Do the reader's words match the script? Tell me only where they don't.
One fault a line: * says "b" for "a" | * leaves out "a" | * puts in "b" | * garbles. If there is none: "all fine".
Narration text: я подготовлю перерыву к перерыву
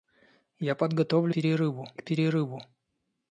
all fine